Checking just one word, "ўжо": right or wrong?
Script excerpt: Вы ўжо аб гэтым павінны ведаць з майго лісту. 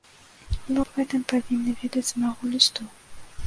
wrong